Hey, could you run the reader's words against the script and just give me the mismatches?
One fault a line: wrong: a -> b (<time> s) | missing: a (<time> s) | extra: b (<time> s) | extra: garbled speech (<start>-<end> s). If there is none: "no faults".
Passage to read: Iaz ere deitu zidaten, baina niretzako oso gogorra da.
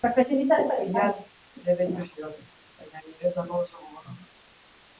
no faults